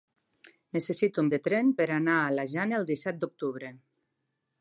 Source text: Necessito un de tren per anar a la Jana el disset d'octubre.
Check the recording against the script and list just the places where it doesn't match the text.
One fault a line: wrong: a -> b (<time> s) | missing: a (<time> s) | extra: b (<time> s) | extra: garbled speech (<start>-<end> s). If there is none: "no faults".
no faults